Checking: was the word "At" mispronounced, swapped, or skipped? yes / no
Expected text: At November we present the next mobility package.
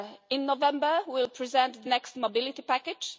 yes